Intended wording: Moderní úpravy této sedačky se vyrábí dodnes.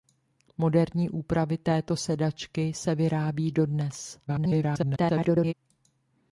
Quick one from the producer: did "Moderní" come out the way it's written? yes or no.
yes